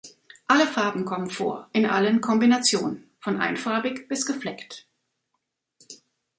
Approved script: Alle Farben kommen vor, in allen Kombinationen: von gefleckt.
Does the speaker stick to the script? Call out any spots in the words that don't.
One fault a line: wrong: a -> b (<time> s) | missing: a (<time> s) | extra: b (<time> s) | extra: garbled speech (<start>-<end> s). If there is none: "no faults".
extra: einfarbig bis (3.4 s)